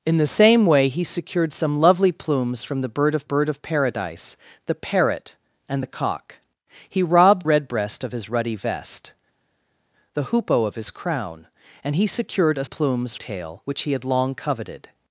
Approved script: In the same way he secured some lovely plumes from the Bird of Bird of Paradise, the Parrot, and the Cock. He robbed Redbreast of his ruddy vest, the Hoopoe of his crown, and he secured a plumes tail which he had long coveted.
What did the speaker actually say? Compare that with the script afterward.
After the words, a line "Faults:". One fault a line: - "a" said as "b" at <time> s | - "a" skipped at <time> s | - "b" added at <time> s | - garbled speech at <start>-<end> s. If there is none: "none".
In the same way he secured some lovely plumes from the Bird of Bird of Paradise, the Parrot, and the Cock. He robbed Redbreast of his ruddy vest, the Hoopoe of his crown, and he secured a plumes tail which he had long coveted.
Faults:
none